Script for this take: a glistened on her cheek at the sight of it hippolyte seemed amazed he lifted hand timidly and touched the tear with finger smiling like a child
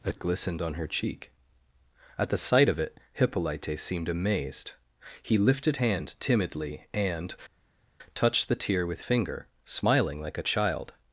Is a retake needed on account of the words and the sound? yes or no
no